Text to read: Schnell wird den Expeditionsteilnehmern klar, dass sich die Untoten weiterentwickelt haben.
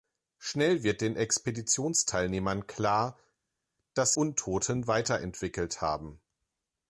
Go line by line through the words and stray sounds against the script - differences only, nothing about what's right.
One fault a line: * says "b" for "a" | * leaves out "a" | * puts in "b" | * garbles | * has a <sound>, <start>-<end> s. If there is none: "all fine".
* leaves out "sich die"